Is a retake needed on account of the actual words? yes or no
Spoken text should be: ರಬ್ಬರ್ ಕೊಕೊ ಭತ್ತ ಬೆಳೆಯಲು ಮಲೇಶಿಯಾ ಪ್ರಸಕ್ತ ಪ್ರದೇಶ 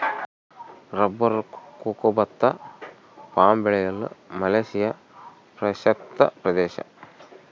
yes